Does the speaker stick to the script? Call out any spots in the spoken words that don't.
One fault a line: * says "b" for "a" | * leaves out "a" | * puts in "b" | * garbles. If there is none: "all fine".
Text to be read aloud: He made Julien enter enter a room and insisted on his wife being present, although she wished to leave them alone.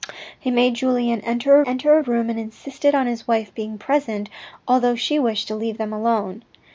all fine